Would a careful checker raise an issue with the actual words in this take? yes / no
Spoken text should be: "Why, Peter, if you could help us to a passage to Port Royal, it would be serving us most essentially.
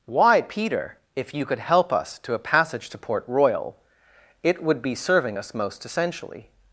no